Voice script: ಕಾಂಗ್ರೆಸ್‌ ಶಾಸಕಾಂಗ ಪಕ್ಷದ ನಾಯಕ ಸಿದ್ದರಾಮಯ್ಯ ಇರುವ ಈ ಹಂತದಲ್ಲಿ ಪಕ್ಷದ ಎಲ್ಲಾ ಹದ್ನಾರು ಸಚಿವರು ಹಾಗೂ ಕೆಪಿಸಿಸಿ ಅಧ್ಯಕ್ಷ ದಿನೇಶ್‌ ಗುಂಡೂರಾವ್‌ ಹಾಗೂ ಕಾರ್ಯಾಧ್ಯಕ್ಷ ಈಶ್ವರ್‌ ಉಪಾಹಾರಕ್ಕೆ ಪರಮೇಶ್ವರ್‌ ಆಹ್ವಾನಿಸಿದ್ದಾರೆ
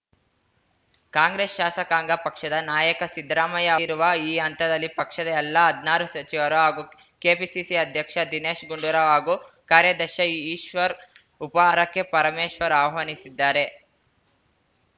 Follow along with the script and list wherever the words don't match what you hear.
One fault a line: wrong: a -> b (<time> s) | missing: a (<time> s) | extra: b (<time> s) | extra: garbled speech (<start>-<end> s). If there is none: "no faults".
no faults